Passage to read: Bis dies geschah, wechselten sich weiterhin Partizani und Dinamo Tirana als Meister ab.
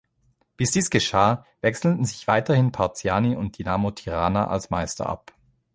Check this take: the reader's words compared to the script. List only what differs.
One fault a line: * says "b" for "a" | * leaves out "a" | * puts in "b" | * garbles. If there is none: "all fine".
all fine